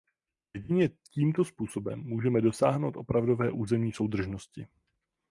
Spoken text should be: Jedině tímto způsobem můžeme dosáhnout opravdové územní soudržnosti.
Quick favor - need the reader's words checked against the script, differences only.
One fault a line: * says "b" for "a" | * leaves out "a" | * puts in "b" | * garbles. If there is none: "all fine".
all fine